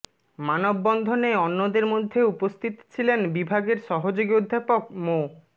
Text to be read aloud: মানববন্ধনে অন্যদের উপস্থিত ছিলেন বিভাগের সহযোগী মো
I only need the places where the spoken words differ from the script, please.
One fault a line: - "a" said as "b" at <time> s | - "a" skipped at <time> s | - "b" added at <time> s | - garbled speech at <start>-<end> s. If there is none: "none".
- "মধ্যে" added at 1.9 s
- "অধ্যাপক" added at 4.3 s